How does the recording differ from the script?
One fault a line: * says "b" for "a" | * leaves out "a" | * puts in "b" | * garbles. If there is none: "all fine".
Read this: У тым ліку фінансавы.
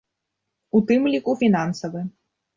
all fine